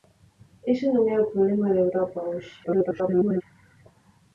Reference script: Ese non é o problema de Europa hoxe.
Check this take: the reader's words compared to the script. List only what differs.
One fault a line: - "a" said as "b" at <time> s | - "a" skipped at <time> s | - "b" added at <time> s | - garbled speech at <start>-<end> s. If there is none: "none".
- garbled speech at 2.6-3.4 s